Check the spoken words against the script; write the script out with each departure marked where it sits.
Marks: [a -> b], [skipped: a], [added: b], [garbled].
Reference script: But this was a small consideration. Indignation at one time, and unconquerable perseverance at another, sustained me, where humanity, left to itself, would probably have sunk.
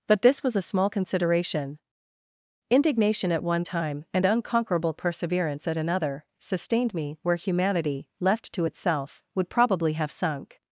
But this was a small consideration. Indignation at one time, and unconquerable perseverance at another, sustained me, where humanity, left to itself, would probably have sunk.